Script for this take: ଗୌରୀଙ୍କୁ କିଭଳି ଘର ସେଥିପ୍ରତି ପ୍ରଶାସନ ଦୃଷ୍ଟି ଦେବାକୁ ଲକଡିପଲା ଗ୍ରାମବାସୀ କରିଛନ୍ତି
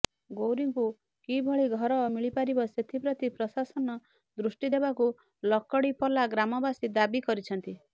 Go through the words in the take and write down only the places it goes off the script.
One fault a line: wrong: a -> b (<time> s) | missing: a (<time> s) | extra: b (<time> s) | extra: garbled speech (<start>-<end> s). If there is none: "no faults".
extra: ମିଳିପାରିବ (2.1 s)
extra: ଦାବି (6.9 s)